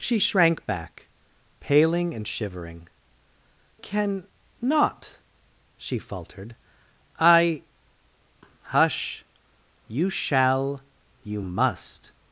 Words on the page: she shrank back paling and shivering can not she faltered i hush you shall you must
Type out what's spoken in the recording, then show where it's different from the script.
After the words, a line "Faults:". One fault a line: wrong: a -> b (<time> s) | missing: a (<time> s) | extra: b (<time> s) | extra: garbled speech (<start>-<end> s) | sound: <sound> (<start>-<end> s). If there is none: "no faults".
she shrank back paling and shivering can not she faltered i hush you shall you must
Faults:
no faults